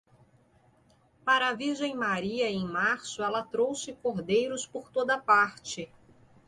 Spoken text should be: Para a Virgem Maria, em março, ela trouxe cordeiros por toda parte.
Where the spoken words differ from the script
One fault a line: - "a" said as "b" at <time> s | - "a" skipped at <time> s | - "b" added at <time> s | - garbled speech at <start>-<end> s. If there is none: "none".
none